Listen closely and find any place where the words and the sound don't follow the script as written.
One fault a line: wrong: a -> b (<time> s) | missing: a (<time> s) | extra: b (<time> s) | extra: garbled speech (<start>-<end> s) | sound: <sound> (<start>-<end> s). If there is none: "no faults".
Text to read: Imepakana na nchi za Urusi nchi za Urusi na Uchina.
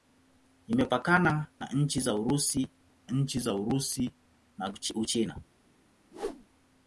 sound: whoosh (6.1-6.5 s)